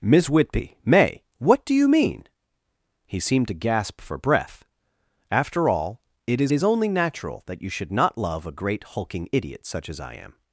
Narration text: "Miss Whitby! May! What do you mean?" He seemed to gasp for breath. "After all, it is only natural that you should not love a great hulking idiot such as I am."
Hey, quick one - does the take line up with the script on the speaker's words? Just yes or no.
no